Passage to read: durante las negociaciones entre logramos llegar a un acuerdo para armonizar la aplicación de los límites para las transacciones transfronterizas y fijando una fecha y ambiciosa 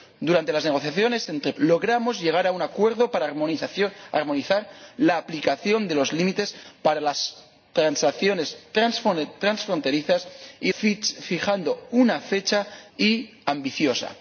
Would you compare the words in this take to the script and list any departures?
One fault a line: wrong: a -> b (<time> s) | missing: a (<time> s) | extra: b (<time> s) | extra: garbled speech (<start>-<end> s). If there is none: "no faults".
no faults